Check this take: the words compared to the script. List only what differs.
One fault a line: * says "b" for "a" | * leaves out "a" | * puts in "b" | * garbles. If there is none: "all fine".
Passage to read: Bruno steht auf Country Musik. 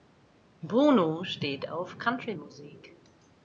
all fine